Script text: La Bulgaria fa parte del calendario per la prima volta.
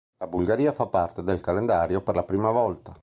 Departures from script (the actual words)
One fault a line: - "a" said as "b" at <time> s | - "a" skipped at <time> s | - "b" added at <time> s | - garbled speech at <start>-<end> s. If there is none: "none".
none